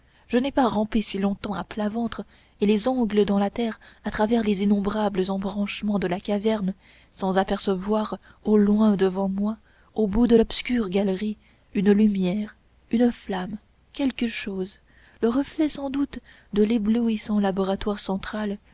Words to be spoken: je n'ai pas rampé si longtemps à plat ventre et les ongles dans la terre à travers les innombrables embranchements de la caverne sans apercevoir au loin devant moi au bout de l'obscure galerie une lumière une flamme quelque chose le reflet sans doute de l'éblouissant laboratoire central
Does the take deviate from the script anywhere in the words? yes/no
no